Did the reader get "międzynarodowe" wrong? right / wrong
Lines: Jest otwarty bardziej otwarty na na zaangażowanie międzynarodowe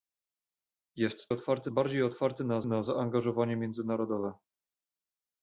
right